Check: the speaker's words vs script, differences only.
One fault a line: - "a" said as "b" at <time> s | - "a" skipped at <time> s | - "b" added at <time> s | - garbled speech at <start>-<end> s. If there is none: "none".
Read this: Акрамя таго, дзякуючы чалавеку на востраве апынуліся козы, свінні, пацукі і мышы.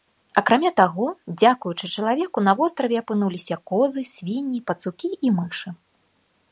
none